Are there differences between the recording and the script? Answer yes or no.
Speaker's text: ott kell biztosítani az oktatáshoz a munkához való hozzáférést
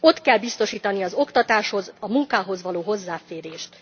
no